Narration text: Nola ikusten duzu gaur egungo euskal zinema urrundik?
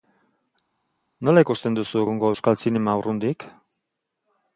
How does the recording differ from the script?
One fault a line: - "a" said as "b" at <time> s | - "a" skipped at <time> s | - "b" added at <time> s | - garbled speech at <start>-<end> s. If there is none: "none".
- "gaur" skipped at 2.0 s